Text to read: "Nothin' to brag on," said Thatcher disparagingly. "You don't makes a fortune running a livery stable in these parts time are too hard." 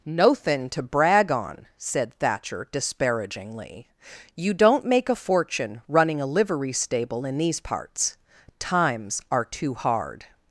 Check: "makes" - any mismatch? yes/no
yes